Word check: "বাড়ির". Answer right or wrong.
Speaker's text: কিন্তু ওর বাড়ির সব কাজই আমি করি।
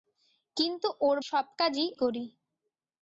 wrong